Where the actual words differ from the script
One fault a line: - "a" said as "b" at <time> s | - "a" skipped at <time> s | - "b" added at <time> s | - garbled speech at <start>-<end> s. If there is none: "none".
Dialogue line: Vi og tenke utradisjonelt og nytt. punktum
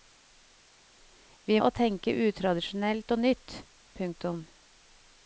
none